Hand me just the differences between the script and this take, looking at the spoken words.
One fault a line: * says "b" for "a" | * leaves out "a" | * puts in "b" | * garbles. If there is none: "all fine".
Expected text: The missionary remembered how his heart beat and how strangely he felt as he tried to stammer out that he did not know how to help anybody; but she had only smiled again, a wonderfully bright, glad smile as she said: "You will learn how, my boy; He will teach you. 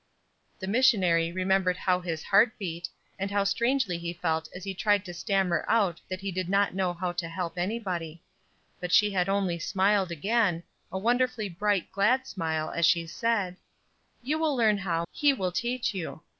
* leaves out "my boy"